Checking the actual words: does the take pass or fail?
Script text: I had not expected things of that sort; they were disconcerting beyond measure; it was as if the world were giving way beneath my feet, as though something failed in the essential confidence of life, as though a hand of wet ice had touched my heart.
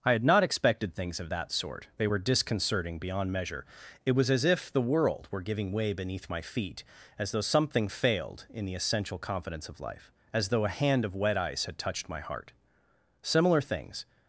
fail